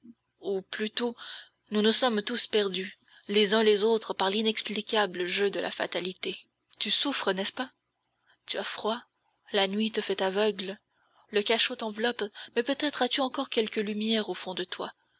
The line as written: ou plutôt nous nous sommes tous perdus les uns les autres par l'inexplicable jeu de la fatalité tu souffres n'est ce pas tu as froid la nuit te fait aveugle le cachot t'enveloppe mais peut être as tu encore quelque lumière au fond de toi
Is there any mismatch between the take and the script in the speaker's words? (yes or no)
no